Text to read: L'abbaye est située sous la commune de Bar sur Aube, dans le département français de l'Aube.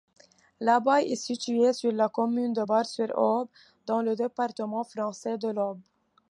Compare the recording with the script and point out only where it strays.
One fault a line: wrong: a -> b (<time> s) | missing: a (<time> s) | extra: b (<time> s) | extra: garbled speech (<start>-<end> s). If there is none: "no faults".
wrong: sous -> sur (1.7 s)